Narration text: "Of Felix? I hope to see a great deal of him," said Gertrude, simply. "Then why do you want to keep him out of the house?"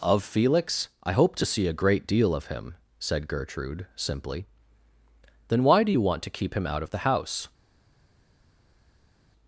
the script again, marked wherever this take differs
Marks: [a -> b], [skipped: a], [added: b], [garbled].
"Of Felix? I hope to see a great deal of him," said Gertrude, simply. "Then why do you want to keep him out of the house?"